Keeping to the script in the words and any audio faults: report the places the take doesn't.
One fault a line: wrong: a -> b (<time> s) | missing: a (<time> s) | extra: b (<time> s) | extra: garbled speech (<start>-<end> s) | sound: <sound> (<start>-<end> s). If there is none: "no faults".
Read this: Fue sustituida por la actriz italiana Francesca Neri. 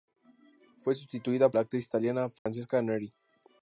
missing: por (1.5 s)
sound: dropout (2.4-2.5 s)